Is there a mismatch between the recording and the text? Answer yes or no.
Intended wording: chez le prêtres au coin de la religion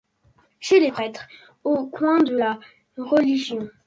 yes